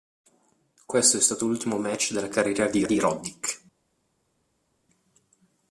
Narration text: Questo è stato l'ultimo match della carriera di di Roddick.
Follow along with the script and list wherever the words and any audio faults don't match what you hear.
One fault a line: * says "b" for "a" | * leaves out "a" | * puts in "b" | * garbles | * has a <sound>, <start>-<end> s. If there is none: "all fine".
all fine